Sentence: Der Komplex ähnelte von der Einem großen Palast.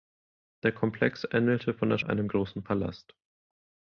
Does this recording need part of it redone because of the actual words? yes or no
no